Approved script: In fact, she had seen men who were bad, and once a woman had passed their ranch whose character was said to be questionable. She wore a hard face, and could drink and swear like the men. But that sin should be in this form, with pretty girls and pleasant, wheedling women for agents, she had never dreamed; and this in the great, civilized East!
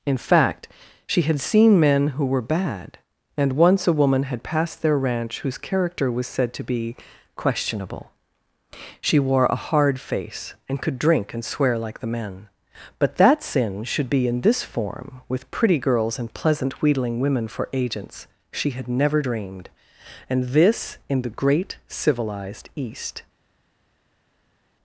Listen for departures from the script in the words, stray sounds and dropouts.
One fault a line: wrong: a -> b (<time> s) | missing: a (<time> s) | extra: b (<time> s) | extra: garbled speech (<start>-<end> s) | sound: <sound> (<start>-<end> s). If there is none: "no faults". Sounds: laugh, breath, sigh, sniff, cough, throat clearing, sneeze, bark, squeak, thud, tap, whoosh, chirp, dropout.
no faults